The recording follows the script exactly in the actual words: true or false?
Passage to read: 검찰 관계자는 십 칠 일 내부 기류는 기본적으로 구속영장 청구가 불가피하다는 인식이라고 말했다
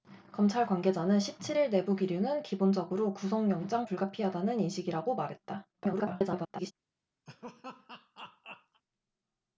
false